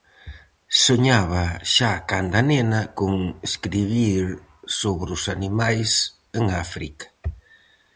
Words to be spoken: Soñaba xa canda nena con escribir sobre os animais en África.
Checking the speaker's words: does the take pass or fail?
pass